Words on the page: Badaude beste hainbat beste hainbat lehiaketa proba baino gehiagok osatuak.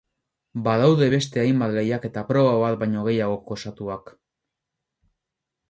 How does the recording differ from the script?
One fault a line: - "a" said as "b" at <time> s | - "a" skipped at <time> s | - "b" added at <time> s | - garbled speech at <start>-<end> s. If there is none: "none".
- "beste hainbat" skipped at 1.7 s
- "bat" added at 2.6 s